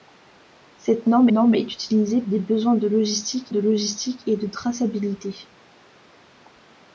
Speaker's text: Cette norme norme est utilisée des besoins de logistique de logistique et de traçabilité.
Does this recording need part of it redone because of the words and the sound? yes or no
no